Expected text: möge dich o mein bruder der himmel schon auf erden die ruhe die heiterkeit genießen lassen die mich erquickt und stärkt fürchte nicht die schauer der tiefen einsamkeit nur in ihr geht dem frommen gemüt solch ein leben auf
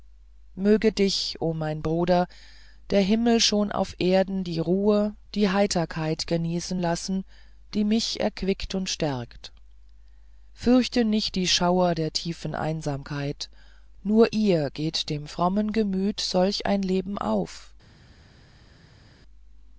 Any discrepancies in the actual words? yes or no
yes